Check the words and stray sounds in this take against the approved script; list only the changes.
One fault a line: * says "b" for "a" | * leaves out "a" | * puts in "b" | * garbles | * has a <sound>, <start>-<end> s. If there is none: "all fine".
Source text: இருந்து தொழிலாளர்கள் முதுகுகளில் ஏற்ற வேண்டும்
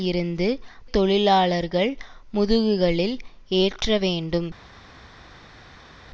all fine